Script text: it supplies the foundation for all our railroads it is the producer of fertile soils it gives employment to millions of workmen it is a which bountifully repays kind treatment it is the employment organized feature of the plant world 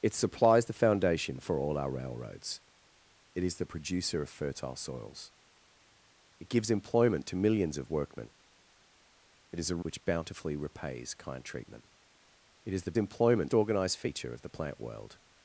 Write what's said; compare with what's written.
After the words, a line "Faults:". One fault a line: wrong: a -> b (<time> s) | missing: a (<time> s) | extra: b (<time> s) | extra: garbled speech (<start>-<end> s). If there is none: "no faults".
it supplies the foundation for all our railroads it is the producer of fertile soils it gives employment to millions of workmen it is a which bountifully repays kind treatment it is the employment organized feature of the plant world
Faults:
no faults